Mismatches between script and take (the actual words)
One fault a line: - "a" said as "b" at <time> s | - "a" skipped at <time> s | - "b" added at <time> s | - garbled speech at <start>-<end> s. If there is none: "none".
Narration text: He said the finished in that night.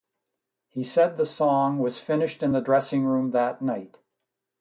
- "song was" added at 1.3 s
- "the dressing room" added at 2.5 s